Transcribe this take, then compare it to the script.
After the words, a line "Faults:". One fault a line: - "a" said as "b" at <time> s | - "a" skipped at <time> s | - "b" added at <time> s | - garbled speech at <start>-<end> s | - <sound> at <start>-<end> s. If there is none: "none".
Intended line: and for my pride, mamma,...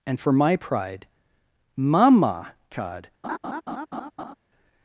and for my pride, mama god,...
Faults:
- "mamma" said as "mama god" at 1.8 s
- laugh at 3.2-4.3 s